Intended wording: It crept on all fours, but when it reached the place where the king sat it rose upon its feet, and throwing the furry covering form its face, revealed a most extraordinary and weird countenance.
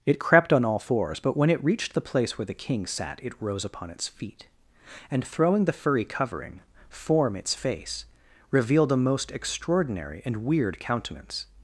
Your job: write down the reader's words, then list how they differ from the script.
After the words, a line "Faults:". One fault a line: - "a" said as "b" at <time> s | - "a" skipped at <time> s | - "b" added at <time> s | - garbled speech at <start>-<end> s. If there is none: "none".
It crept on all fours, but when it reached the place where the king sat it rose upon its feet, and throwing the furry covering form its face, revealed a most extraordinary and weird countenance.
Faults:
none